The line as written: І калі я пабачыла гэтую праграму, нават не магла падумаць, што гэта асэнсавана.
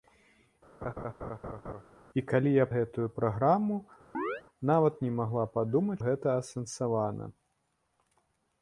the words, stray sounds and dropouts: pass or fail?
fail